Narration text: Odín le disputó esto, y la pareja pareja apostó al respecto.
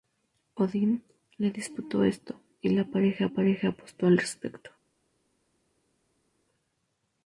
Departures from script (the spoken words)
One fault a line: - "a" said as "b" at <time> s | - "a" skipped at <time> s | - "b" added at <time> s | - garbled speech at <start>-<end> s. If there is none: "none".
none